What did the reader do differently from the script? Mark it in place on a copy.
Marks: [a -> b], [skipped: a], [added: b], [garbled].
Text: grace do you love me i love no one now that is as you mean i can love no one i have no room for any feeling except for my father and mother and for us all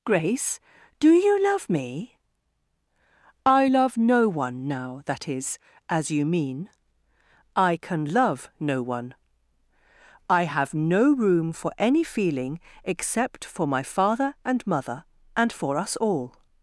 grace do you love me i love no one now that is as you mean i can love no one i have no room for any feeling except for my father and mother and for us all